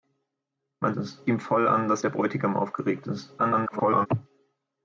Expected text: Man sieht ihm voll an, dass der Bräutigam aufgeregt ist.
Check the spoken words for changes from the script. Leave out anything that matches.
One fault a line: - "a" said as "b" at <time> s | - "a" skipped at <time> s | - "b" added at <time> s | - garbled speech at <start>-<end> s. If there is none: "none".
- "sieht" said as "ist" at 0.9 s
- garbled speech at 3.4-4.1 s